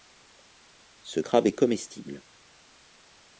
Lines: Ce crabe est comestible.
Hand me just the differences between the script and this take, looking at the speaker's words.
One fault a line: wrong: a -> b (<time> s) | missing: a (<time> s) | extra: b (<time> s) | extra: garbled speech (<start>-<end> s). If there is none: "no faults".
no faults